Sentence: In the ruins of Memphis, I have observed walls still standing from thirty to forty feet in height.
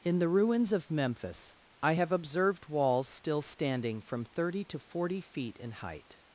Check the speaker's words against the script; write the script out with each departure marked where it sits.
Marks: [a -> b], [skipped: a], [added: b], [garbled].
In the ruins of Memphis, I have observed walls still standing from thirty to forty feet in height.